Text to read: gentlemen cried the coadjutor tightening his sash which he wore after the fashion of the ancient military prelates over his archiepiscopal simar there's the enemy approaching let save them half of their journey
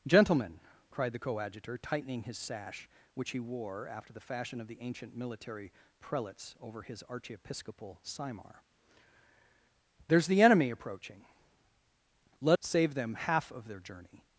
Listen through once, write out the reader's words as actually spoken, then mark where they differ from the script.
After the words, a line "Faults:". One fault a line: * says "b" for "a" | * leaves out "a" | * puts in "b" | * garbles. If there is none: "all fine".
gentlemen cried the coadjutor tightening his sash which he wore after the fashion of the ancient military prelates over his archiepiscopal simar there's the enemy approaching let save them half of their journey
Faults:
all fine